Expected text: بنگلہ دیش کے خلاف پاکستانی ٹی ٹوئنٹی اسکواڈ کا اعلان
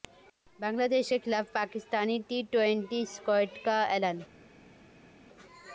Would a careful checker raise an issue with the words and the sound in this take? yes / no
no